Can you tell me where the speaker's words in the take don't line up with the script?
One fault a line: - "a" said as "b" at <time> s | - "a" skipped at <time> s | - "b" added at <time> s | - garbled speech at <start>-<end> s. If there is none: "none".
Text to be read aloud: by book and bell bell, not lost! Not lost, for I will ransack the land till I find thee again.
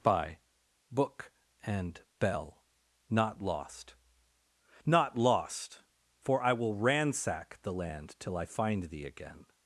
- "bell" skipped at 2.6 s